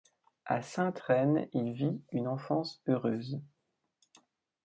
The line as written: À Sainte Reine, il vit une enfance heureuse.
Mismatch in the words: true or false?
false